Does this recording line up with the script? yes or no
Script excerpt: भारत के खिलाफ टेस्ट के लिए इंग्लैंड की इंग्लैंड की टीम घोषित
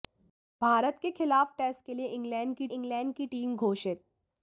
yes